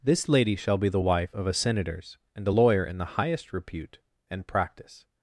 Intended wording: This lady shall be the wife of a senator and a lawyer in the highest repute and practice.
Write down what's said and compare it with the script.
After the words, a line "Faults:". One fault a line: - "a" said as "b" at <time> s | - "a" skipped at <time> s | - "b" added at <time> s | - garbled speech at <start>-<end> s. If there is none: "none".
This lady shall be the wife of a senators and a lawyer in the highest repute and practice.
Faults:
- "senator" said as "senators" at 1.5 s